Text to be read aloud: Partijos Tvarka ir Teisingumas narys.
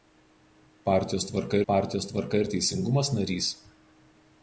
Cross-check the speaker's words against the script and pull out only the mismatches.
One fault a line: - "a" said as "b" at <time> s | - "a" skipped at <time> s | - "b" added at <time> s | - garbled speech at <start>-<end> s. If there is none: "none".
- "partijos Tvarka" added at 1.7 s